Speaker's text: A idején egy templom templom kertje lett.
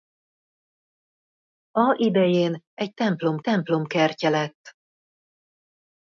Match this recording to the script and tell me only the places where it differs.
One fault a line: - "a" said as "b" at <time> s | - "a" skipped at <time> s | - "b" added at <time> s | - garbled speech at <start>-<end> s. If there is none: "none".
none